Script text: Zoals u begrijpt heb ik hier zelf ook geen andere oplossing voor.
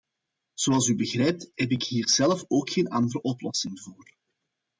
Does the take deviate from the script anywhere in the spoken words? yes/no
no